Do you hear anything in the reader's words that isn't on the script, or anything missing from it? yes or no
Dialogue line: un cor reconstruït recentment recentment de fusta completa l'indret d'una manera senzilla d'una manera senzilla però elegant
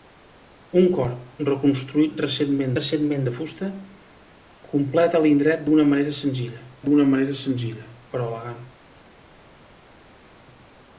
no